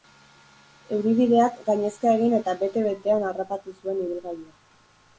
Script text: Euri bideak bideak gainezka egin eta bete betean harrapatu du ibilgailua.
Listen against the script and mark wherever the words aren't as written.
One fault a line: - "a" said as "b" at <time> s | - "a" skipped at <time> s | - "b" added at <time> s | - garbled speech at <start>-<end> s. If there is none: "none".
- "bideak" skipped at 1.6 s
- "du" said as "zuen" at 3.8 s